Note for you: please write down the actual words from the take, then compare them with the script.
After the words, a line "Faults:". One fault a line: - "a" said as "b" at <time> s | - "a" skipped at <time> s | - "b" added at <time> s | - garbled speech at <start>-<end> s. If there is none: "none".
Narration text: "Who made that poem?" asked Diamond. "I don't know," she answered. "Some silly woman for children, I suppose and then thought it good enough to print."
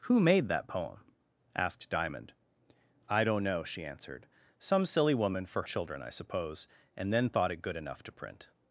"Who made that poem?" asked Diamond. "I don't know," she answered. "Some silly woman for children, I suppose and then thought it good enough to print."
Faults:
none